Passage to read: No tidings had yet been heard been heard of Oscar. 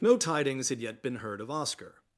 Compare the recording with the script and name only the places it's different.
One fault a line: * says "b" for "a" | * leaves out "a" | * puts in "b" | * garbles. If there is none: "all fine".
* leaves out "been heard"